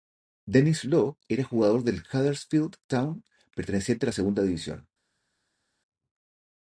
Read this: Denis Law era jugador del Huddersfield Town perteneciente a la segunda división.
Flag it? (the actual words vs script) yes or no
no